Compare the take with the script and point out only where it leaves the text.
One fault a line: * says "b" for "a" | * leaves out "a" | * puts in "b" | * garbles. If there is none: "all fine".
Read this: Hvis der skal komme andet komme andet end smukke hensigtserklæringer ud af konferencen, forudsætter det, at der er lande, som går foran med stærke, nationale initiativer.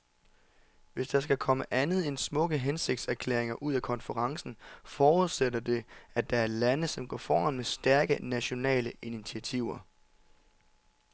* leaves out "komme andet"